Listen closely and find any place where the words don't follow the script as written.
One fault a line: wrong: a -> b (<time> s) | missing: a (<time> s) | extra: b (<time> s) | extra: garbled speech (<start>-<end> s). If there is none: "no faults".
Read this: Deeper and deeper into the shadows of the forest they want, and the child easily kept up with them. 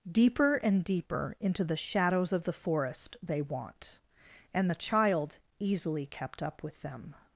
no faults